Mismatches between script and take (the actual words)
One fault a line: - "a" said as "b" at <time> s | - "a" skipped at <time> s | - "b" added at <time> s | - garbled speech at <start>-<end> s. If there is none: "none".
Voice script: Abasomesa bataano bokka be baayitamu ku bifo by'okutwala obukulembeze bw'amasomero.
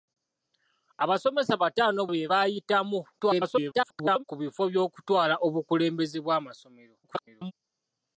- "bokka" skipped at 2.0 s
- garbled speech at 3.2-4.2 s
- garbled speech at 7.0-7.5 s